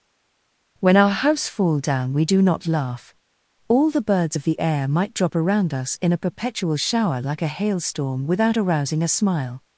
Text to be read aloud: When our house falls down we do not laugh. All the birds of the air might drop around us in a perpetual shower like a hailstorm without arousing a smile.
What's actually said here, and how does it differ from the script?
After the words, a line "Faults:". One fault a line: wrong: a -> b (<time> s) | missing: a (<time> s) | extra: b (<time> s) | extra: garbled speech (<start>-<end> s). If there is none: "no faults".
When our house fall down we do not laugh. All the birds of the air might drop around us in a perpetual shower like a hailstorm without arousing a smile.
Faults:
wrong: falls -> fall (1.5 s)